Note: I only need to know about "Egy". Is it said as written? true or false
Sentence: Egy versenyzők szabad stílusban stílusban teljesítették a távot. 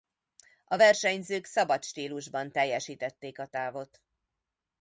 false